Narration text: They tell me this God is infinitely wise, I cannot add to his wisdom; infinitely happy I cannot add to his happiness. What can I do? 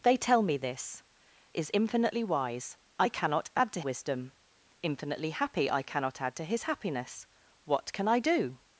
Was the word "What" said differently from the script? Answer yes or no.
no